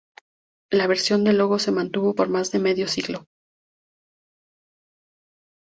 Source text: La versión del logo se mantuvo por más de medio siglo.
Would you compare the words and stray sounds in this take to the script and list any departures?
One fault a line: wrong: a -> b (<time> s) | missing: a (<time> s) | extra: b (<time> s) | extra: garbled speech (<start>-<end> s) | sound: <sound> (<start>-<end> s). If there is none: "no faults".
no faults